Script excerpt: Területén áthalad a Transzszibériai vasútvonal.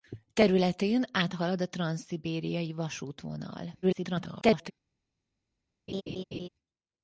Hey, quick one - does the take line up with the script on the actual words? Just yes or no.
no